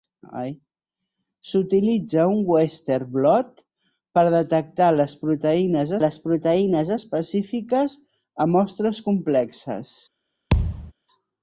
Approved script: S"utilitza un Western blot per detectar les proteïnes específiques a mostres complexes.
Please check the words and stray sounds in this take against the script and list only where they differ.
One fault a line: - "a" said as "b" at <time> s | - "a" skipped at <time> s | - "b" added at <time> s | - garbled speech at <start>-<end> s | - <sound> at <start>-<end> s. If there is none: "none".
- "les proteïnes" added at 6.0 s
- thud at 10.5-10.9 s